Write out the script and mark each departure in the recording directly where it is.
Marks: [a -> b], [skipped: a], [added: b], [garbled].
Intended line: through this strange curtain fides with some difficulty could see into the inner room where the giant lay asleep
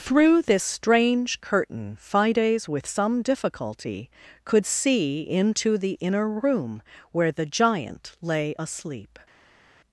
through this strange curtain fides with some difficulty could see into the inner room where the giant lay asleep